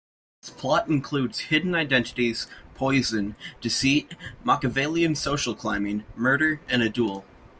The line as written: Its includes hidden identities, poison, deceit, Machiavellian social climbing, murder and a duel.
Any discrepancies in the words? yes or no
yes